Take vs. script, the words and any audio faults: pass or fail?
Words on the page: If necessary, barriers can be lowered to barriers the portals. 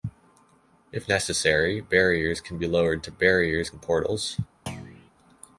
fail